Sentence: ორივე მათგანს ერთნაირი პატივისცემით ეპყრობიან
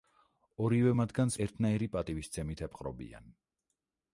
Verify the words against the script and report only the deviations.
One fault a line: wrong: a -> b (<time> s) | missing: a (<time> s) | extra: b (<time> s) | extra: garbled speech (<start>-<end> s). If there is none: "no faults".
no faults